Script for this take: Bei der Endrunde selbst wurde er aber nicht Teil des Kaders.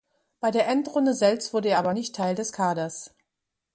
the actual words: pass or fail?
pass